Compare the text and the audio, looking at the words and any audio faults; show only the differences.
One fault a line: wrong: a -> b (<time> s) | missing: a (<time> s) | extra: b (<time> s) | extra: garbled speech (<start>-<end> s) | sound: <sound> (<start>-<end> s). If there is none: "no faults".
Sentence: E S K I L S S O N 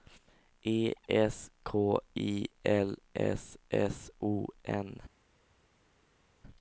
no faults